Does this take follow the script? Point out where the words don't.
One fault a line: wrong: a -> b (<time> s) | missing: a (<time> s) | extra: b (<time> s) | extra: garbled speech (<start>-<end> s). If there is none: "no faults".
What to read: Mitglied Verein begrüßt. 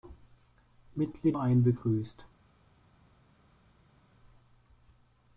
no faults